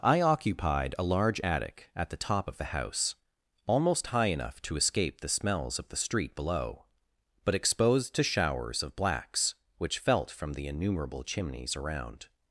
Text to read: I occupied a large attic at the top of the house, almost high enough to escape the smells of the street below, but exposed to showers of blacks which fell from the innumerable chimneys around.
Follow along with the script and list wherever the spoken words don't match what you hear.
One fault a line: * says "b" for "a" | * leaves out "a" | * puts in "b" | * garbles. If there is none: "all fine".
* says "felt" for "fell"